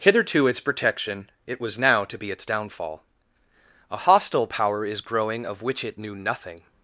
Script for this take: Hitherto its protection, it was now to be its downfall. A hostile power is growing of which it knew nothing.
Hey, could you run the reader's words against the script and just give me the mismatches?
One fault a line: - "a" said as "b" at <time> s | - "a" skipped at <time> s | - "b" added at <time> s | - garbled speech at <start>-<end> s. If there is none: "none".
none